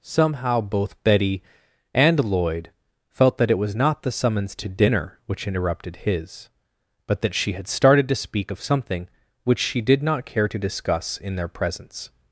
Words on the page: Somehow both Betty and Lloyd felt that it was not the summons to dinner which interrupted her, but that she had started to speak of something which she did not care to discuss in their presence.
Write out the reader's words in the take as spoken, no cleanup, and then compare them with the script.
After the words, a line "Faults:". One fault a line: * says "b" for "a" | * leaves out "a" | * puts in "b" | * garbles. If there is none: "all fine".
Somehow both Betty and Lloyd felt that it was not the summons to dinner which interrupted his, but that she had started to speak of something which she did not care to discuss in their presence.
Faults:
* says "his" for "her"